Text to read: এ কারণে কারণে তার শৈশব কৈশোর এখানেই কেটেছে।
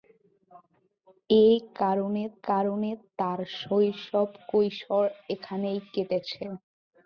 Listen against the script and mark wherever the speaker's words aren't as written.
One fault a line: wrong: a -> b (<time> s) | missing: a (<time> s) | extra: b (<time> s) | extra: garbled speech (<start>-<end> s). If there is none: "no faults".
no faults